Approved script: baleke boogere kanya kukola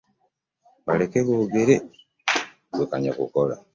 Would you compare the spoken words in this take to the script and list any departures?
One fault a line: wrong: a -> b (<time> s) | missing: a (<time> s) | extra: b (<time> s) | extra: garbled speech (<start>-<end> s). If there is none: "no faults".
extra: ggwe (2.7 s)